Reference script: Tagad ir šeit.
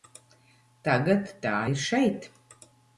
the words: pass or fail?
fail